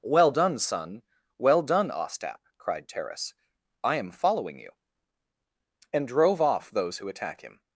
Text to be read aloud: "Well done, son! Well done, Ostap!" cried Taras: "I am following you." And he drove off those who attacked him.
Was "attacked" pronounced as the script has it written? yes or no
no